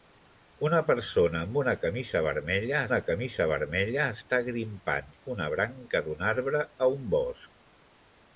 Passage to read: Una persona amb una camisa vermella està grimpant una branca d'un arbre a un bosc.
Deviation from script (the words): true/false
true